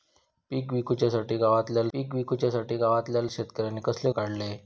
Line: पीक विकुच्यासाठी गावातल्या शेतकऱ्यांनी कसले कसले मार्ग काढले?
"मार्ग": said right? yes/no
no